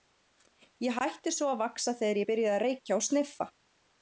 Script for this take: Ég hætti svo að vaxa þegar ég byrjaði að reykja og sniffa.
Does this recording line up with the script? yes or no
yes